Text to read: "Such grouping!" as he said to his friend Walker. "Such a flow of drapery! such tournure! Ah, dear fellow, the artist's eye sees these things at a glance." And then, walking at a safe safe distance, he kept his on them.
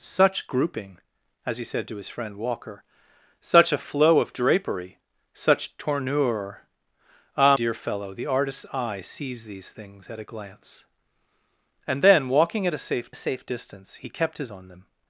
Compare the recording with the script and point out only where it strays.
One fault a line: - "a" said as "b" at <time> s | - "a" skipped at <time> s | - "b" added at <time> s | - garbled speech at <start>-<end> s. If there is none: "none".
none